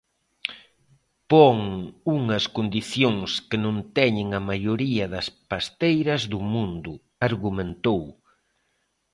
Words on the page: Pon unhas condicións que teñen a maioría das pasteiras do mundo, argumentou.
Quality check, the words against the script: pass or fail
fail